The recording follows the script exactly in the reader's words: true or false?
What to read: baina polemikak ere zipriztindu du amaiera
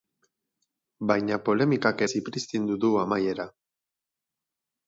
false